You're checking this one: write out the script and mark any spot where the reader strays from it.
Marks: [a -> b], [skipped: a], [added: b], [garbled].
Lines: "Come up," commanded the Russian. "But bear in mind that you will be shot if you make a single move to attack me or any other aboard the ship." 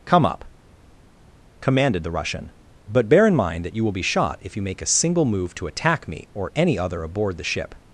"Come up," commanded the Russian. "But bear in mind that you will be shot if you make a single move to attack me or any other aboard the ship."